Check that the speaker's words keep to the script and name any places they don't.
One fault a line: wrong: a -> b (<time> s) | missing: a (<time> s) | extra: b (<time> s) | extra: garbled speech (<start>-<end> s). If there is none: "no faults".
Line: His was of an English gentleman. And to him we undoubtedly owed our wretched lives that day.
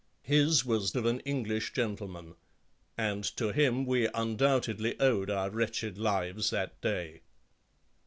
no faults